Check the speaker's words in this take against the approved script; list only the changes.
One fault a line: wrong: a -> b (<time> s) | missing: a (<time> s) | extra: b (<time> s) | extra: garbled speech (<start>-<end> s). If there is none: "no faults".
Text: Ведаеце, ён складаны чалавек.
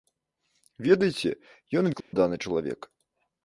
no faults